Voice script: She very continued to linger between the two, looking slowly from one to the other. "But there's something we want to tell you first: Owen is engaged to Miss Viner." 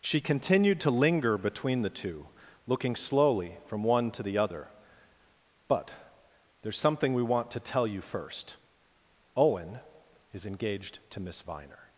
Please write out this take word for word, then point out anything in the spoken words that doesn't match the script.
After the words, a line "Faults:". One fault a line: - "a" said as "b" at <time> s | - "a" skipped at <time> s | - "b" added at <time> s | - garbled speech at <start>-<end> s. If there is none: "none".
She continued to linger between the two, looking slowly from one to the other. "But there's something we want to tell you first: Owen is engaged to Miss Viner."
Faults:
- "very" skipped at 0.2 s